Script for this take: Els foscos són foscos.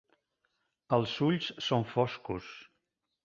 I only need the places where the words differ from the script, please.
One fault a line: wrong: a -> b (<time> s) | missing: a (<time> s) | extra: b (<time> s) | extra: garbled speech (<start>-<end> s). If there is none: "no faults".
wrong: foscos -> ulls (1.3 s)